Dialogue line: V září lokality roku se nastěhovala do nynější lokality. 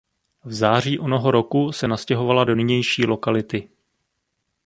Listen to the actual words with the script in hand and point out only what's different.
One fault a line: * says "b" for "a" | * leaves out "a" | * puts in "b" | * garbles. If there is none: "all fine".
* says "onoho" for "lokality"